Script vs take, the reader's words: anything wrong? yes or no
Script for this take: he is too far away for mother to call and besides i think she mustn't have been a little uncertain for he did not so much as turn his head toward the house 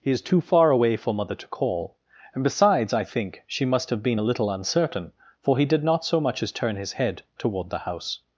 yes